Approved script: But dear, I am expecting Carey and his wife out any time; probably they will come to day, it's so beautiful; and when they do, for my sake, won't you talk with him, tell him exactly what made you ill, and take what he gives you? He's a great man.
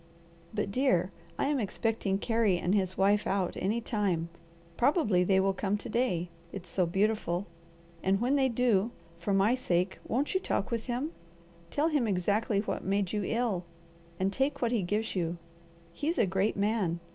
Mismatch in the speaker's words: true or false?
false